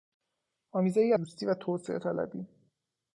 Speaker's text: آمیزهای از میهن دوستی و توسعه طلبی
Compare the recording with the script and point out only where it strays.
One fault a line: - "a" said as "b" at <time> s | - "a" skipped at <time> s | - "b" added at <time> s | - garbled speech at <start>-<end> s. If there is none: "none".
- "از میهن" skipped at 1.1 s